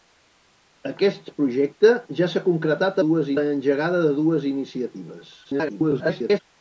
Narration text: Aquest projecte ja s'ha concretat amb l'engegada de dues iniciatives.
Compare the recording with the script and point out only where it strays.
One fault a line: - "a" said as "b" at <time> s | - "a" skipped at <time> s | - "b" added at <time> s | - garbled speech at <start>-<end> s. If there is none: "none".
- "amb" said as "dues" at 3.1 s
- garbled speech at 5.4-6.4 s